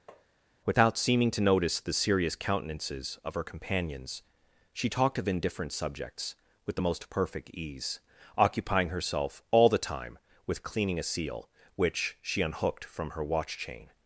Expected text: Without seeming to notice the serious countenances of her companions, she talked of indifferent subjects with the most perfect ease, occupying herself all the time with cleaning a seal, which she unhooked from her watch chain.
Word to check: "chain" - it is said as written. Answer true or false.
true